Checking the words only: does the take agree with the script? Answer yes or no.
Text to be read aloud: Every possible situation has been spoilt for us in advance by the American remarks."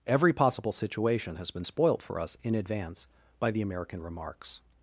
yes